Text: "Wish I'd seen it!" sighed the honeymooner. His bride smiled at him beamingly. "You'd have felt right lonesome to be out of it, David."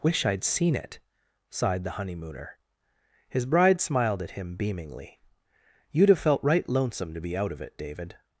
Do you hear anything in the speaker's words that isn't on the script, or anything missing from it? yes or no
no